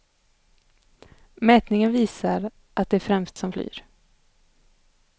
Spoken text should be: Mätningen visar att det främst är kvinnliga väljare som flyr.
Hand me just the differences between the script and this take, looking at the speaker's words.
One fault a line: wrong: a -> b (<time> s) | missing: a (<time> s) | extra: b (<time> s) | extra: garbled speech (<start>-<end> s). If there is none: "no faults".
missing: är kvinnliga väljare (3.4 s)